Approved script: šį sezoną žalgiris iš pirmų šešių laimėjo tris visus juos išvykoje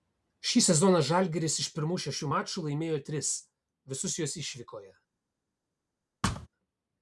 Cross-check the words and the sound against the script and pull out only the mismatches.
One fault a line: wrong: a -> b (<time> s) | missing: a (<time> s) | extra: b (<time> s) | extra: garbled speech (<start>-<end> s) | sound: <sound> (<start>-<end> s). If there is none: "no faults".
extra: mačų (2.3 s)
sound: thud (6.2-6.5 s)